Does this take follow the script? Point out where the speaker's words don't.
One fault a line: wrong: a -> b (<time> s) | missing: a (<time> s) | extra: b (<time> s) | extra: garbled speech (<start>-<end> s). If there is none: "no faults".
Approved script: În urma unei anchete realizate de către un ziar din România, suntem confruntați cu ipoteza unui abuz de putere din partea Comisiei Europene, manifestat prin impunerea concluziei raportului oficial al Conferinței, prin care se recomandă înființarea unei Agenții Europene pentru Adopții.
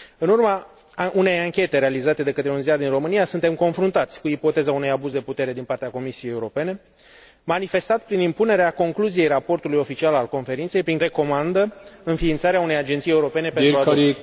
missing: care se (11.0 s)